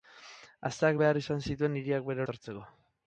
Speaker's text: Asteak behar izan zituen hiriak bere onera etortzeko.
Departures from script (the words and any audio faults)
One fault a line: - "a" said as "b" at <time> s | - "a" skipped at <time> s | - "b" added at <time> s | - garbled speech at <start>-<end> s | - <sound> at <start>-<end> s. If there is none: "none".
- "onera" skipped at 2.3 s